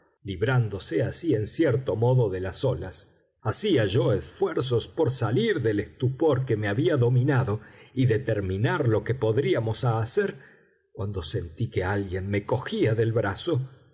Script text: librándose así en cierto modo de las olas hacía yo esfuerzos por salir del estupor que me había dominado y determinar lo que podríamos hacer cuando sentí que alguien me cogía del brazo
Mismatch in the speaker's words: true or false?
false